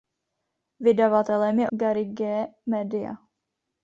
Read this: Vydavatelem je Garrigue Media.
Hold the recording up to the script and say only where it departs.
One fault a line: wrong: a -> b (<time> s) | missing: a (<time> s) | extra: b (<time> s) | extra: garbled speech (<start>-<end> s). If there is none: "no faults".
no faults